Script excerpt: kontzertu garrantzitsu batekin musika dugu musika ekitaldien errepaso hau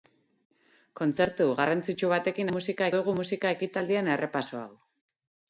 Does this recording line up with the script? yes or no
yes